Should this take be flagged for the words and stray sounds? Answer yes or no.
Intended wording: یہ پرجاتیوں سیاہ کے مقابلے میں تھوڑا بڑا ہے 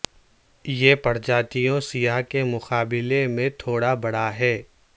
no